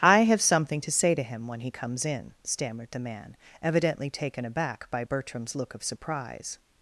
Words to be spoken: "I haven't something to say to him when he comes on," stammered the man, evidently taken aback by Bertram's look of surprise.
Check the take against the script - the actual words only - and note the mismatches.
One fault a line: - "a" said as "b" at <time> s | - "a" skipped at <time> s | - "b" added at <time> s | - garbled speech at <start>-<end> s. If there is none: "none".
- "haven't" said as "have" at 0.2 s
- "on" said as "in" at 2.1 s